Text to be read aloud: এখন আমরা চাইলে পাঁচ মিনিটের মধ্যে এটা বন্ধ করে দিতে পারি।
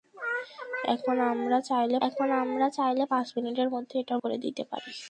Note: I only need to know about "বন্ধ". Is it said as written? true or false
false